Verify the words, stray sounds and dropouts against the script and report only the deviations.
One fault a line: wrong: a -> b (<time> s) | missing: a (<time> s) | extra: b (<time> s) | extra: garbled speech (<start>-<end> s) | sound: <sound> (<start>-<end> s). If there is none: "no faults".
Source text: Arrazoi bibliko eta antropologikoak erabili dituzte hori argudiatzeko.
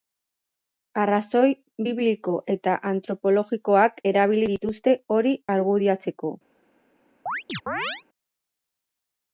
sound: chirp (7.3-8.0 s)